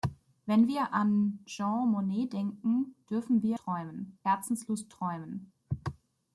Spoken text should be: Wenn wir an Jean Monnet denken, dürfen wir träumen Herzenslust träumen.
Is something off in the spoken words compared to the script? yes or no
no